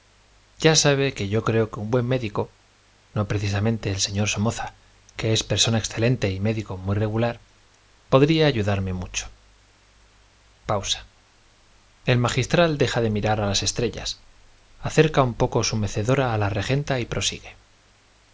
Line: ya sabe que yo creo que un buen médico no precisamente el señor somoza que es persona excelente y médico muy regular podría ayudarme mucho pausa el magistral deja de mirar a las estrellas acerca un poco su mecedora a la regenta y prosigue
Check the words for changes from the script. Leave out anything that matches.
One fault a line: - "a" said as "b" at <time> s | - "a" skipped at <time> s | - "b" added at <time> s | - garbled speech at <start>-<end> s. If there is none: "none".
none